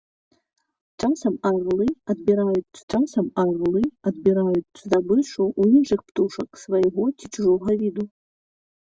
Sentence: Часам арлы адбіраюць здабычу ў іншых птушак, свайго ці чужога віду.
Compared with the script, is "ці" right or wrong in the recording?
right